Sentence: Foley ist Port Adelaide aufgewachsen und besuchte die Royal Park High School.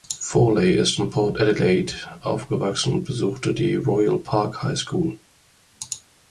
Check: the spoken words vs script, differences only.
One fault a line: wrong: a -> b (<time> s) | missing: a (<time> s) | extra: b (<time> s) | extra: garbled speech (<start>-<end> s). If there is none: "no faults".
extra: in (1.0 s)